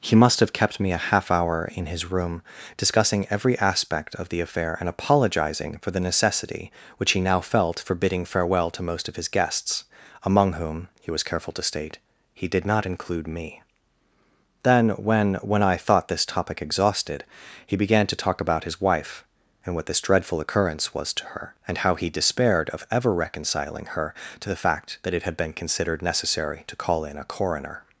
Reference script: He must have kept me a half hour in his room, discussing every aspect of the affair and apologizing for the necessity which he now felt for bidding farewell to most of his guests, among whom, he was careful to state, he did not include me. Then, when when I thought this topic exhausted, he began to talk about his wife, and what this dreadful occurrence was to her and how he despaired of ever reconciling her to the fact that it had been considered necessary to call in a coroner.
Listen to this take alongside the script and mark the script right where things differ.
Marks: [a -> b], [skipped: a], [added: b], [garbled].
He must have kept me a half hour in his room, discussing every aspect of the affair and apologizing for the necessity which he now felt for bidding farewell to most of his guests, among whom, he was careful to state, he did not include me. Then, when when I thought this topic exhausted, he began to talk about his wife, and what this dreadful occurrence was to her and how he despaired of ever reconciling her to the fact that it had been considered necessary to call in a coroner.